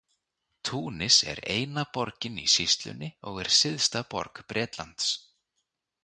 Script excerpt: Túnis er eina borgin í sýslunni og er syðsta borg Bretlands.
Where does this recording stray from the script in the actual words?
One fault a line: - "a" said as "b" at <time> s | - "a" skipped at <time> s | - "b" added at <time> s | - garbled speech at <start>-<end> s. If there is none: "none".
none